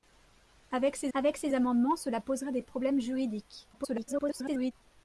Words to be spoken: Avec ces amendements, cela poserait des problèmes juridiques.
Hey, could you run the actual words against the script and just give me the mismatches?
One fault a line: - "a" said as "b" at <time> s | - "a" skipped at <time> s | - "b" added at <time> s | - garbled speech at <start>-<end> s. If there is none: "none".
- "avec ces" added at 1.1 s
- garbled speech at 3.7-4.7 s